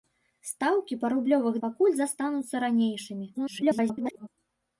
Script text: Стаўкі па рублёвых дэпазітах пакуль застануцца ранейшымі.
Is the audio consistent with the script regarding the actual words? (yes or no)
no